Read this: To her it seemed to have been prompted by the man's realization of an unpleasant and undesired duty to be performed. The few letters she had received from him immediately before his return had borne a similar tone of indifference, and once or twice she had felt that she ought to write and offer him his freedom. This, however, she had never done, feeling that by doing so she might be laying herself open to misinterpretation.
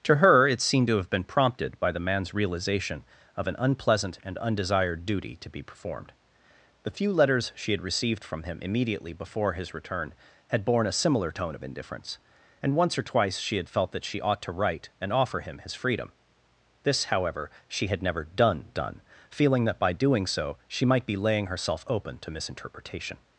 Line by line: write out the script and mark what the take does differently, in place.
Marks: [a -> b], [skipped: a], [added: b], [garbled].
To her it seemed to have been prompted by the man's realization of an unpleasant and undesired duty to be performed. The few letters she had received from him immediately before his return had borne a similar tone of indifference, and once or twice she had felt that she ought to write and offer him his freedom. This, however, she had never done, [added: done] feeling that by doing so she might be laying herself open to misinterpretation.